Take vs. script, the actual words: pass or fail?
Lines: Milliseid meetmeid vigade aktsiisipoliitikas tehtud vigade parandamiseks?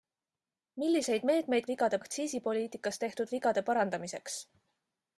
pass